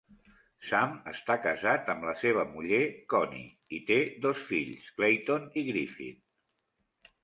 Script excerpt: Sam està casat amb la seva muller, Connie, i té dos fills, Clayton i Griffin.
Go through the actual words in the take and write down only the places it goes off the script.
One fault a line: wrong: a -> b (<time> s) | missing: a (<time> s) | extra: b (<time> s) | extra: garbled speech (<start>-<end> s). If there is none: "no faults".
no faults